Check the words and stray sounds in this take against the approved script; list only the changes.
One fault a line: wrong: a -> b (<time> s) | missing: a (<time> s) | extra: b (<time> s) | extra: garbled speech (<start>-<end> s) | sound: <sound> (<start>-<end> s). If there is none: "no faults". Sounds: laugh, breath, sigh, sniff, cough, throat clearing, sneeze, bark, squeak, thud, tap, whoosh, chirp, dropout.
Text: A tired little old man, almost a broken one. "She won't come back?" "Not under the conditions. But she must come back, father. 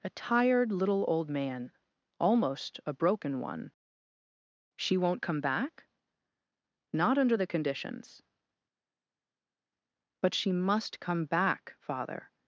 no faults